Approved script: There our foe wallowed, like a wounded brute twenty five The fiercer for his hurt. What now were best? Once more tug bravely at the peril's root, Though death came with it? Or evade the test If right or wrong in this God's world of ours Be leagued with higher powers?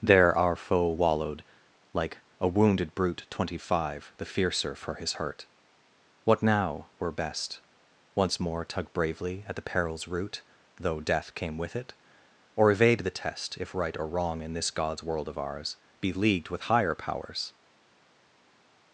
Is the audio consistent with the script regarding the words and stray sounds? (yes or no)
yes